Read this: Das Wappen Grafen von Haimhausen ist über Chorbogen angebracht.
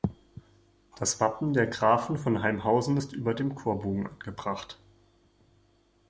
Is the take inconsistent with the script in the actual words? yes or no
yes